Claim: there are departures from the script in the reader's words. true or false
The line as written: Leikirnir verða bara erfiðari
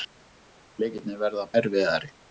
true